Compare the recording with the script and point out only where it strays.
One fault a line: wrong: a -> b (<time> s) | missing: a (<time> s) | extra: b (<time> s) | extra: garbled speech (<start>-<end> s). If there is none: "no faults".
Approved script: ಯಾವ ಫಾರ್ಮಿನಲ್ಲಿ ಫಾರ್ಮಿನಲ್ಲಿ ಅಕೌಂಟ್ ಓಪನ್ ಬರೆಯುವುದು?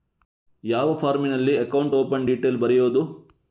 missing: ಫಾರ್ಮಿನಲ್ಲಿ (1.6 s)
extra: ಡೀಟೇಲ್ (2.3 s)